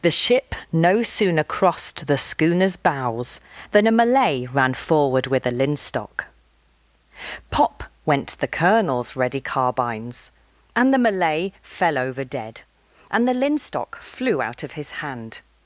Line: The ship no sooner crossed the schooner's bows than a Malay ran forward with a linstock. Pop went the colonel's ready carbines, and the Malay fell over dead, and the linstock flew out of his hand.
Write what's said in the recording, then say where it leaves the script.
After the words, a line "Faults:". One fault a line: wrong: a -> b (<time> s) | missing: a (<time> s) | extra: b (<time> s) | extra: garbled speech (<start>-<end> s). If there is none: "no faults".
The ship no sooner crossed the schooner's bows than a Malay ran forward with a linstock. Pop went the colonel's ready carbines, and the Malay fell over dead, and the linstock flew out of his hand.
Faults:
no faults